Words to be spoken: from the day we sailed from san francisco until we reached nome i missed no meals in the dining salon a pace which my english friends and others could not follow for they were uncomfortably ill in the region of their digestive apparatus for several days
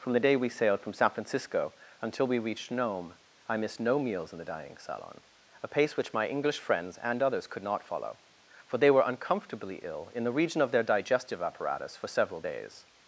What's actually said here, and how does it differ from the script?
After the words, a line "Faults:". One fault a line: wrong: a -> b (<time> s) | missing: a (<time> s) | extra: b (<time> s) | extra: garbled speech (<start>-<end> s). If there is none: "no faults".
from the day we sailed from san francisco until we reached nome i missed no meals in the dining salon a pace which my english friends and others could not follow for they were uncomfortably ill in the region of their digestive apparatus for several days
Faults:
no faults